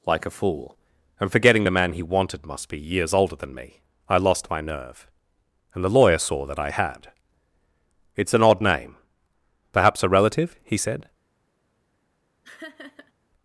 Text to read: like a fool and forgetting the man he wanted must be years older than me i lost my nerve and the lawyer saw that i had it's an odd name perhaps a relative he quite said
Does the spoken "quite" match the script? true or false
false